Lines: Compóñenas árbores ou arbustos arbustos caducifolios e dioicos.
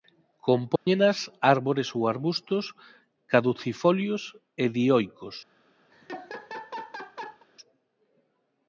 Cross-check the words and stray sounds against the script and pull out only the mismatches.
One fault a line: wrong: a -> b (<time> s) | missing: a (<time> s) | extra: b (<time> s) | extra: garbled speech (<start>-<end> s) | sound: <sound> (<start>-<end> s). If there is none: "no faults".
sound: dropout (0.8-0.9 s)
missing: arbustos (2.6 s)
sound: laugh (5.9-7.5 s)